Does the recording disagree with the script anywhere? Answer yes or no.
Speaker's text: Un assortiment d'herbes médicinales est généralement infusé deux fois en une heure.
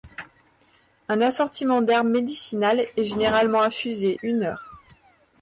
yes